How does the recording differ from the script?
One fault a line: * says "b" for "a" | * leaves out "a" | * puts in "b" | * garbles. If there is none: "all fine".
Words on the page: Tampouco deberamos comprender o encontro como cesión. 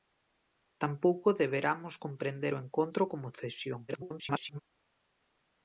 * garbles